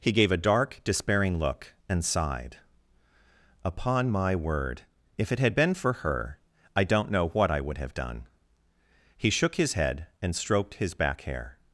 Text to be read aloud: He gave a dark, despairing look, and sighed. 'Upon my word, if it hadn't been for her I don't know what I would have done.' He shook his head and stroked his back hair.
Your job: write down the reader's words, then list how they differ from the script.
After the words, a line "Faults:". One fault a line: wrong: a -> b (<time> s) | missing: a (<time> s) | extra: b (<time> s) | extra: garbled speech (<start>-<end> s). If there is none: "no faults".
He gave a dark, despairing look, and sighed. 'Upon my word, if it had been for her I don't know what I would have done.' He shook his head and stroked his back hair.
Faults:
wrong: hadn't -> had (5.4 s)